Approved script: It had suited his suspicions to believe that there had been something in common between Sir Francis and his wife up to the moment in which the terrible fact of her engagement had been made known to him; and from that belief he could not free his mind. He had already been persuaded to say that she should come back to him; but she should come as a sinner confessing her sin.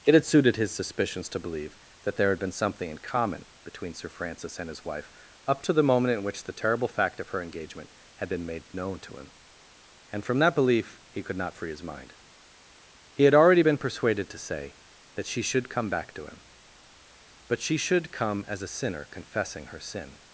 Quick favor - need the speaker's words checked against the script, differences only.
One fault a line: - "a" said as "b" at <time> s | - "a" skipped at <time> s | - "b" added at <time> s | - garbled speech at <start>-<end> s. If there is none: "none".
none